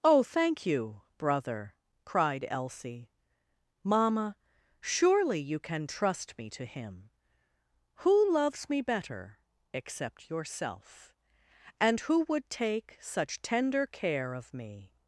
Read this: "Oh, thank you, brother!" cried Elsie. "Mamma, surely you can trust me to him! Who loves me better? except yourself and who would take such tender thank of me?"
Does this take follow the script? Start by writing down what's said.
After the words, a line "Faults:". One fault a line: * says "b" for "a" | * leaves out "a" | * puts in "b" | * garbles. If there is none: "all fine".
"Oh, thank you, brother!" cried Elsie. "Mamma, surely you can trust me to him! Who loves me better? except yourself and who would take such tender care of me?"
Faults:
* says "care" for "thank"